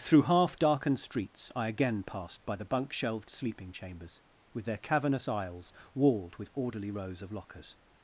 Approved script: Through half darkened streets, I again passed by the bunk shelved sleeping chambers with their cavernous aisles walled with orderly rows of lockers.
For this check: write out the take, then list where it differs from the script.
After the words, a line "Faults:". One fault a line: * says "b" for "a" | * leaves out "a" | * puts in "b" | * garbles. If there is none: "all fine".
Through half darkened streets, I again passed by the bunk shelved sleeping chambers with their cavernous aisles walled with orderly rows of lockers.
Faults:
all fine